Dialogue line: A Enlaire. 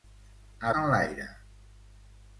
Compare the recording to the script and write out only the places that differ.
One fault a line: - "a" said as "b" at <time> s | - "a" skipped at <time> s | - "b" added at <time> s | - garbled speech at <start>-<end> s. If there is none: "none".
none